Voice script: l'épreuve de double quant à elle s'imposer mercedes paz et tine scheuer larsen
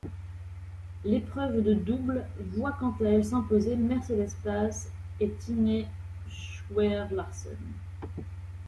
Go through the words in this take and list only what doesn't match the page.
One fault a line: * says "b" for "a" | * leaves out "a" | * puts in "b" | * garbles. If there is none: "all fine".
* puts in "voit"